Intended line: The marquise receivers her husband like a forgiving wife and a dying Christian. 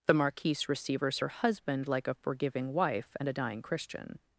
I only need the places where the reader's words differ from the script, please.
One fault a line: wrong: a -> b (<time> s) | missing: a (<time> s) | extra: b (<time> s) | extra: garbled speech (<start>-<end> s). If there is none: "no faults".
no faults